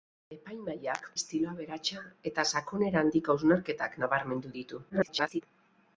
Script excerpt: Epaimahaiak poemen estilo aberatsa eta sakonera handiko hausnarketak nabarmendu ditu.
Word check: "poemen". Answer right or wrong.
wrong